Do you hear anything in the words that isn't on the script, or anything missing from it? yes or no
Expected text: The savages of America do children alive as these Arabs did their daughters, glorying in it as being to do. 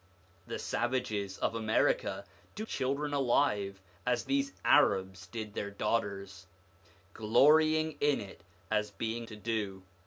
no